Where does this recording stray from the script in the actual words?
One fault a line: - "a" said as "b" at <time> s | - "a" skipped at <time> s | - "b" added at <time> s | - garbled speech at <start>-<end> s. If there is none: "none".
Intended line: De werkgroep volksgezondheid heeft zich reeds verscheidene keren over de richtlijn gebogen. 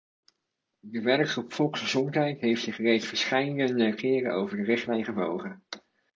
none